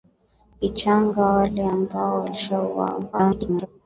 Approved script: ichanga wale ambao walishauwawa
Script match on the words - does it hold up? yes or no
no